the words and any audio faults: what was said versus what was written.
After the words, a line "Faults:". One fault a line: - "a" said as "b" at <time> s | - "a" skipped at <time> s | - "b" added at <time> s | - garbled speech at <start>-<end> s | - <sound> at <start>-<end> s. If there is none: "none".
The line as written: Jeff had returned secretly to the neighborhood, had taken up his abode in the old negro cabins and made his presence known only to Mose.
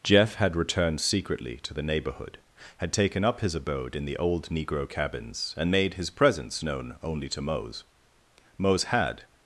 Jeff had returned secretly to the neighborhood, had taken up his abode in the old negro cabins and made his presence known only to Mose. Mose had
Faults:
- "Mose had" added at 8.6 s